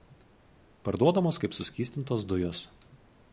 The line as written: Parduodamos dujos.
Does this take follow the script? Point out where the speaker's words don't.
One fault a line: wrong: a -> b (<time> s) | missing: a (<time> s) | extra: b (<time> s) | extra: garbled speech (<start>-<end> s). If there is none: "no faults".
extra: kaip suskystintos (1.4 s)